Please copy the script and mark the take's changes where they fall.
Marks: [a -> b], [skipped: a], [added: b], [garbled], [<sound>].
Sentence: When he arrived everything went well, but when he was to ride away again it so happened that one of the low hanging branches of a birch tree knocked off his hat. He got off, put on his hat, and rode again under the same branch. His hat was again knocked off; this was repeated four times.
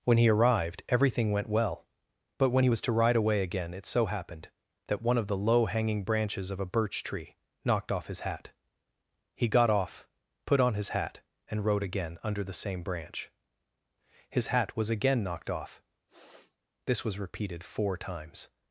When he arrived everything went well, but when he was to ride away again it so happened that one of the low hanging branches of a birch tree knocked off his hat. He got off, put on his hat, and rode again under the same branch. His hat was again knocked off; [sniff] this was repeated four times.